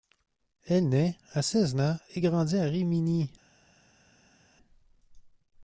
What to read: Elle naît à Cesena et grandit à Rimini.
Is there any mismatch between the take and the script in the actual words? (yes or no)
no